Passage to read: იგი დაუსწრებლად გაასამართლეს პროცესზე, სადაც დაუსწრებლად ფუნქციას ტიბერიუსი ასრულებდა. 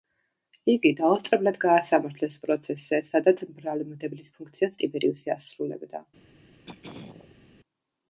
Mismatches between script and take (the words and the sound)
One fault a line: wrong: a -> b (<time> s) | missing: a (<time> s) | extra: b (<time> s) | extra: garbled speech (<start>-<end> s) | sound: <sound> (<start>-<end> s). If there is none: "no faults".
wrong: დაუსწრებლად -> ბრალმდებლის (3.6 s)
sound: throat clearing (6.7-7.4 s)